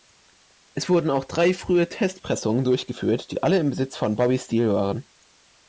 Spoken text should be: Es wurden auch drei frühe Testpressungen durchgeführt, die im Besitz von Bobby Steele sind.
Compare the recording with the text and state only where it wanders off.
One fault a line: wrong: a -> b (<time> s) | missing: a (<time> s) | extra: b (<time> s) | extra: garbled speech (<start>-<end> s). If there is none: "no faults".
extra: alle (3.4 s)
wrong: sind -> waren (4.7 s)